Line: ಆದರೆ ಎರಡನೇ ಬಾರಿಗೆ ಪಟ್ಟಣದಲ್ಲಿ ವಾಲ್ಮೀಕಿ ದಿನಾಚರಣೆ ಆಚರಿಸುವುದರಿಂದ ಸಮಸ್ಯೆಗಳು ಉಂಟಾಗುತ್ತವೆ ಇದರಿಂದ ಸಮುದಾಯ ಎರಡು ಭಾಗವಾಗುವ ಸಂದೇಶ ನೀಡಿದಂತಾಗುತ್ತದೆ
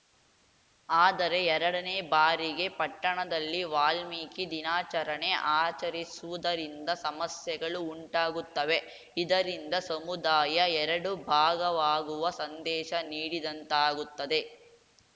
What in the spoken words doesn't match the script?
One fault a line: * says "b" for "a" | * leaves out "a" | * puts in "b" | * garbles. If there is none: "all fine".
all fine